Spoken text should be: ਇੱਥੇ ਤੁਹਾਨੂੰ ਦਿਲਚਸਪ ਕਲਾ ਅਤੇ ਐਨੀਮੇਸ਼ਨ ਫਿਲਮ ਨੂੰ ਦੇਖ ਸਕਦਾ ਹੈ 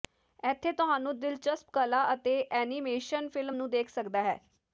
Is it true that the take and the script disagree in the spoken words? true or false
false